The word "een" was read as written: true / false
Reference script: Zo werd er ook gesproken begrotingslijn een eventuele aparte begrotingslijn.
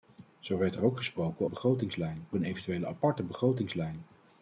true